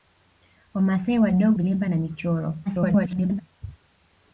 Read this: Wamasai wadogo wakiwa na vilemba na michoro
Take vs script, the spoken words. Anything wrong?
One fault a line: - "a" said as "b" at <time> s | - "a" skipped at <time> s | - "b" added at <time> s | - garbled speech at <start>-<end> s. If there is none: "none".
- "wakiwa na" skipped at 1.6 s
- garbled speech at 2.7-3.4 s